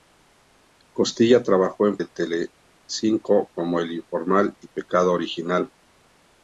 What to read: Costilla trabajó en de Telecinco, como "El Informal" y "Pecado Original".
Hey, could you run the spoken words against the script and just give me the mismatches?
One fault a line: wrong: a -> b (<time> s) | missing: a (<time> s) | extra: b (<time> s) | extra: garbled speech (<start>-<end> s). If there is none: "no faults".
no faults